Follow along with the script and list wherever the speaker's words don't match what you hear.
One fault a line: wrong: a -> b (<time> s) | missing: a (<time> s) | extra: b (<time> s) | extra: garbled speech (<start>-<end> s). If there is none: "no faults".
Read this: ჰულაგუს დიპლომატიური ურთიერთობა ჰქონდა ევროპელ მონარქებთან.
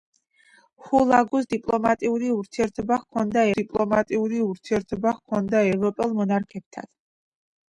extra: დიპლომატიური ურთიერთობა ჰქონდა (3.6 s)